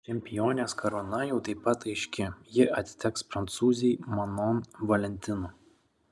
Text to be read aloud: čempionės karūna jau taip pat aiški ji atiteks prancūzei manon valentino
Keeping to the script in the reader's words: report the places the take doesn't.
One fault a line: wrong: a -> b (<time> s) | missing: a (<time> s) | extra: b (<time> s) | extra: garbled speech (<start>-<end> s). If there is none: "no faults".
no faults